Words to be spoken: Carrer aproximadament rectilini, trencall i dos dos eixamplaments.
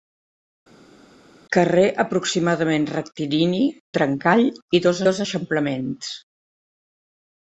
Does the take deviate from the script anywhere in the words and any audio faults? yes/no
no